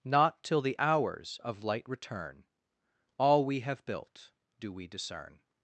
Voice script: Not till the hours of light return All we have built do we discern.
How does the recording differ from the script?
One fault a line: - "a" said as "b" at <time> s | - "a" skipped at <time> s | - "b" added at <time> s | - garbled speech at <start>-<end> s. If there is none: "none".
none